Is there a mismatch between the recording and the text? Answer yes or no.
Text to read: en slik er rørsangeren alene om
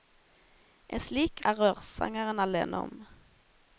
no